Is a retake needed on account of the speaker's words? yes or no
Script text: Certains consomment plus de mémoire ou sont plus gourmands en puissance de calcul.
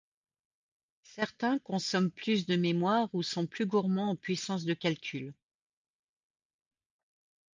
no